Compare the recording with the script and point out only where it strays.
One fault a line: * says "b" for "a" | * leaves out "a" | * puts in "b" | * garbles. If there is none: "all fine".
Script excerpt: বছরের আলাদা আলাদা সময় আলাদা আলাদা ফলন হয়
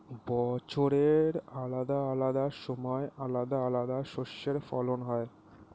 * puts in "শস্যের"